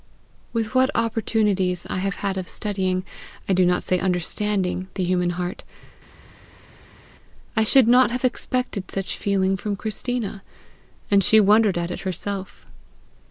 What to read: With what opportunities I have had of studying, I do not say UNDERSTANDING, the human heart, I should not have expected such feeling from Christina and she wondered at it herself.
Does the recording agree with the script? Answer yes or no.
yes